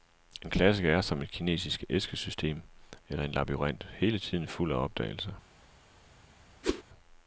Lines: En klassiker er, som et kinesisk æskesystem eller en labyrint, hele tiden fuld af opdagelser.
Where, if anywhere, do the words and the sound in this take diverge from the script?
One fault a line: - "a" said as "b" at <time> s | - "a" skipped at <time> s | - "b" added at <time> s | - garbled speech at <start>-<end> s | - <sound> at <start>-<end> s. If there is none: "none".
- whoosh at 6.6-6.8 s